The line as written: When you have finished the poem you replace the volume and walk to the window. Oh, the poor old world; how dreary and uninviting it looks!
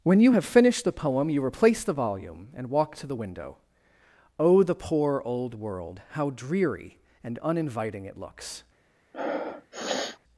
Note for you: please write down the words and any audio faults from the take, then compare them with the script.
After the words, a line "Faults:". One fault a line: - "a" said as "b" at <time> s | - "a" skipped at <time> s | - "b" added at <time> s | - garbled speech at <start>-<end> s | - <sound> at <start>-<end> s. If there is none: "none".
When you have finished the poem you replace the volume and walk to the window. Oh, the poor old world; how dreary and uninviting it looks!
Faults:
- sniff at 9.1-10.2 s